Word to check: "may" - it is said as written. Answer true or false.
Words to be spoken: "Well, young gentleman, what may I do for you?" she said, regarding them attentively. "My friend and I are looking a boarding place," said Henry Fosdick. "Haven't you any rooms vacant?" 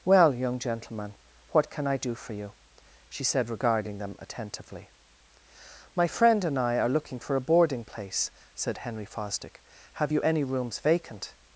false